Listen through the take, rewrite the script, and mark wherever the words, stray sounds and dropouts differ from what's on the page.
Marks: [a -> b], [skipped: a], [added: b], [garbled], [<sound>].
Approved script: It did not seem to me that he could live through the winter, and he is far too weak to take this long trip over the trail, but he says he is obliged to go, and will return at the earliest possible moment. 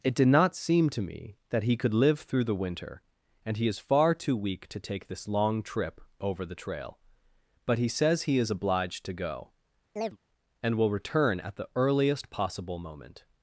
It did not seem to me that he could live through the winter, and he is far too weak to take this long trip over the trail, but he says he is obliged to go, [chirp] and will return at the earliest possible moment.